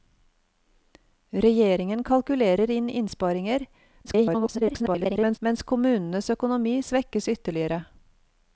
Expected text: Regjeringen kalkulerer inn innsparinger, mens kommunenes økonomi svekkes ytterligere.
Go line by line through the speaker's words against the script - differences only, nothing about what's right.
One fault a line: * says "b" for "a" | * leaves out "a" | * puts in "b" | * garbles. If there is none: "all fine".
* garbles